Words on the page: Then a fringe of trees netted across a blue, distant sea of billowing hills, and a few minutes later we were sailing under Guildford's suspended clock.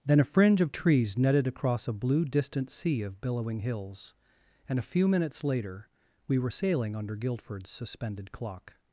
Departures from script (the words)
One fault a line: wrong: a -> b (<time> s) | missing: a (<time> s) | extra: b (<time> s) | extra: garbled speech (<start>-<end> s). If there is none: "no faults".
no faults